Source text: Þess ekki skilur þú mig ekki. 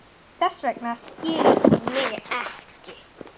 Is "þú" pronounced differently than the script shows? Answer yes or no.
no